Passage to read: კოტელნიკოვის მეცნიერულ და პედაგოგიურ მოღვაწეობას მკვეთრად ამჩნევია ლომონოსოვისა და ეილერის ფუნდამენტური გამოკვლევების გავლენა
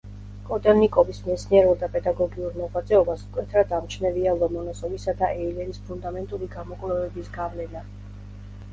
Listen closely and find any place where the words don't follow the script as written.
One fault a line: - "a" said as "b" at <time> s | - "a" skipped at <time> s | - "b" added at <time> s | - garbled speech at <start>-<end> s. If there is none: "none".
none